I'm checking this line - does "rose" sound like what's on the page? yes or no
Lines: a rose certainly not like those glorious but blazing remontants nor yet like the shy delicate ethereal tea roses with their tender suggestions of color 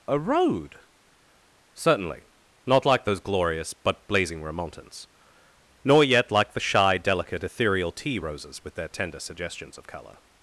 no